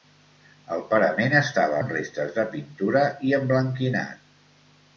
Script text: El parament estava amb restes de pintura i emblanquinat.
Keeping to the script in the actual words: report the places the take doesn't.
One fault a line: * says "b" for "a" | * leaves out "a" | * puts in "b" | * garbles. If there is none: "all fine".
all fine